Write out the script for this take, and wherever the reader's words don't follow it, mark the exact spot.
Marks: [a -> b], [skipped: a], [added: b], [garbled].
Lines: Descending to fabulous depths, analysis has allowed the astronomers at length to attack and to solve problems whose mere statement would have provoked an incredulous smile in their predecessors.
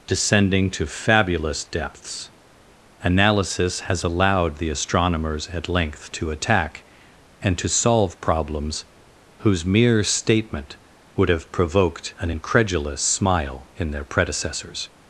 Descending to fabulous depths, analysis has allowed the astronomers at length to attack and to solve problems whose mere statement would have provoked an incredulous smile in their predecessors.